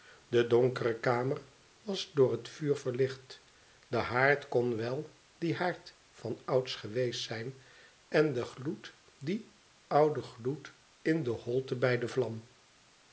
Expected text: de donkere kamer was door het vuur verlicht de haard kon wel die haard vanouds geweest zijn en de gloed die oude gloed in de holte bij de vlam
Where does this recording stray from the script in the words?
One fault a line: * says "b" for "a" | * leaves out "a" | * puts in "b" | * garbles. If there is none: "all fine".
all fine